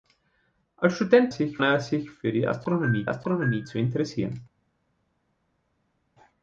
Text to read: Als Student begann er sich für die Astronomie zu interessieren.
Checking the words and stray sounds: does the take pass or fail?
fail